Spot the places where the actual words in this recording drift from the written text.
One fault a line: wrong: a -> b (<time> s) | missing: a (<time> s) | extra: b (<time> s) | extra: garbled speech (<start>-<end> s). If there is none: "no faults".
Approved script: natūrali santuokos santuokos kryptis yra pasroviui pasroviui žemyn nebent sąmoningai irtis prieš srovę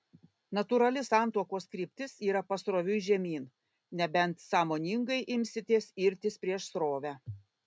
missing: santuokos (1.7 s)
missing: pasroviui (3.0 s)
extra: imsitės (5.4 s)